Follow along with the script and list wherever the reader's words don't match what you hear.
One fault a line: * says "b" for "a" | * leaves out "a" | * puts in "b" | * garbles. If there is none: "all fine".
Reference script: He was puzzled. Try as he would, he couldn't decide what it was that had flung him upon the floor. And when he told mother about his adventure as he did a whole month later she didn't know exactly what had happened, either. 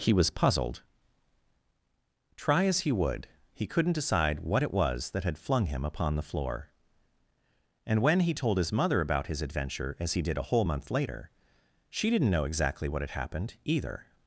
* puts in "his"